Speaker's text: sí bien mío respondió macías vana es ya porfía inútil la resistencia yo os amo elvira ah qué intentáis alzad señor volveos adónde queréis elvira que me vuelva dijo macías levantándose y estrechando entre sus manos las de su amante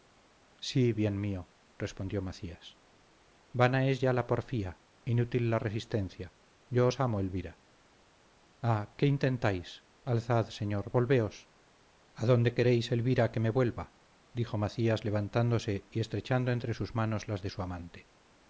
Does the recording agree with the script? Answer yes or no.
no